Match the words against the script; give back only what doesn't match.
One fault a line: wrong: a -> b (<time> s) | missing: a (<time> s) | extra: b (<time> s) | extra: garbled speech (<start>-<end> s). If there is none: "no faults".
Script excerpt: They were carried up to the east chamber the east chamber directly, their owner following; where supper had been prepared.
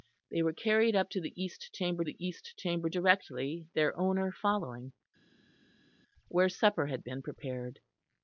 no faults